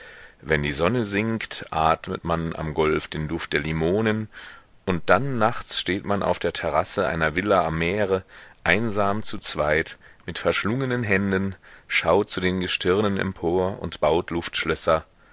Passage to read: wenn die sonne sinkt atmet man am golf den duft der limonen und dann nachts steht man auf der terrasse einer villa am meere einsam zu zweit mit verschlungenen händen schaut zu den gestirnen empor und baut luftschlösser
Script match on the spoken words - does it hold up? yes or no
yes